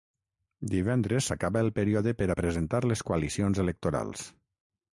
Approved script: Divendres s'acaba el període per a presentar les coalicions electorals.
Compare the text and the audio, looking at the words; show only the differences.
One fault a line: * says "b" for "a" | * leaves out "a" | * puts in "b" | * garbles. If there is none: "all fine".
all fine